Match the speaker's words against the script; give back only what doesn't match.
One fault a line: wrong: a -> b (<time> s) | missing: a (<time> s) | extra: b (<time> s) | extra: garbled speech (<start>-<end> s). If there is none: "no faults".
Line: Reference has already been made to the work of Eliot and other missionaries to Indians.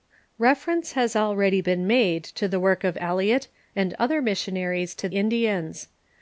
no faults